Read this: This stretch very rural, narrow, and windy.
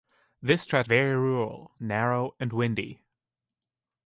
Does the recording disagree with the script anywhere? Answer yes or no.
no